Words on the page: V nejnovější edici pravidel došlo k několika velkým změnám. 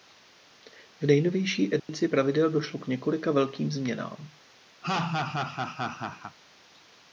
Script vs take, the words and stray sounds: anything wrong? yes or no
yes